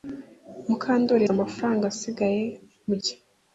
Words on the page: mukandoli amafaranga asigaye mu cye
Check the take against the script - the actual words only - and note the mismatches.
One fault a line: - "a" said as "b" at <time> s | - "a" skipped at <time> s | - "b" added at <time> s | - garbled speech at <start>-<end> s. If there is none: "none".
none